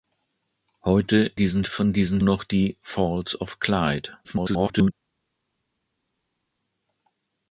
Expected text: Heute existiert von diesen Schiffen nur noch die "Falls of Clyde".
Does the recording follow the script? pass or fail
fail